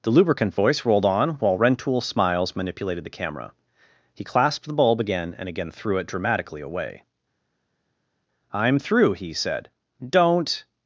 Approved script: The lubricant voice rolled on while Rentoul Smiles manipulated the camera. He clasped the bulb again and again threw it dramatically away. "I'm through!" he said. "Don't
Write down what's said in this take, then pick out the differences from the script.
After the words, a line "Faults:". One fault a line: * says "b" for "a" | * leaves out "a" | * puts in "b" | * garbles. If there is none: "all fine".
The lubricant voice rolled on while Rentoul Smiles manipulated the camera. He clasped the bulb again and again threw it dramatically away. "I'm through!" he said. "Don't
Faults:
all fine